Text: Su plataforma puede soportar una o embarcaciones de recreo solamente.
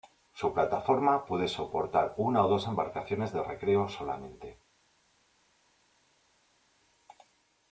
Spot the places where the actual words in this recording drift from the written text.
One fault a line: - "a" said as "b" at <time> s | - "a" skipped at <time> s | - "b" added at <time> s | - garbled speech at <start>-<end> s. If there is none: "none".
- "dos" added at 2.5 s